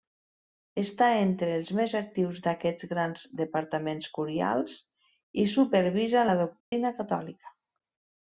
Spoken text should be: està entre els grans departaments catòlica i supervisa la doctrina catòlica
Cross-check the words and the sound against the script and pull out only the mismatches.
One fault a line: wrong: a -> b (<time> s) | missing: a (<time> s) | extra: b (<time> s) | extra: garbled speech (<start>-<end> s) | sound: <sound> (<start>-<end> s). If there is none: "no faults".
extra: més actius d'aquests (1.8 s)
wrong: catòlica -> curials (4.2 s)
sound: dropout (6.6-6.7 s)